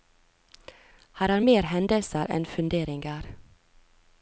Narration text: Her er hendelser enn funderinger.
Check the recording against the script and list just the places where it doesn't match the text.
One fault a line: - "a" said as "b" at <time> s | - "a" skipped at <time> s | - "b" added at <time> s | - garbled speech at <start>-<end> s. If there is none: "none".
- "mer" added at 1.5 s